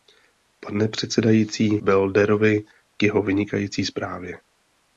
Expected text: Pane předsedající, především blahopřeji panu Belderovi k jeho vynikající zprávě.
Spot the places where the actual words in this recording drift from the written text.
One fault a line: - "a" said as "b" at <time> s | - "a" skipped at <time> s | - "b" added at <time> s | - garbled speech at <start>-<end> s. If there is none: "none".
- "především blahopřeji panu" skipped at 1.8 s